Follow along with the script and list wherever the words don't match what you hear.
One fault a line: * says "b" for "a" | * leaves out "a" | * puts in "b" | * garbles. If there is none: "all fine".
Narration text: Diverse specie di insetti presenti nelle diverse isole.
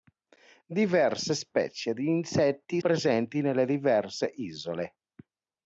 all fine